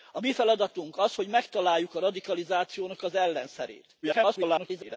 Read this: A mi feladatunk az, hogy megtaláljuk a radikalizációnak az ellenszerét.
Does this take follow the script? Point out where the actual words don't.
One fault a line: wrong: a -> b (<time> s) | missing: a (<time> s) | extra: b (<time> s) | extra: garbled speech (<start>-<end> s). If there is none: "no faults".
extra: garbled speech (4.0-5.0 s)